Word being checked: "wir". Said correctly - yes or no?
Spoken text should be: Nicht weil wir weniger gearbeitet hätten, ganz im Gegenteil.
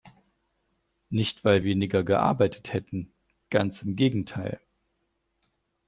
no